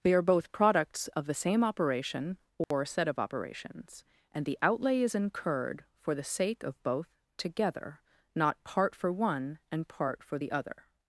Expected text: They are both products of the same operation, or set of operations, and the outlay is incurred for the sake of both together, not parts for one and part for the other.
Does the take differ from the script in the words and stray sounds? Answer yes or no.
yes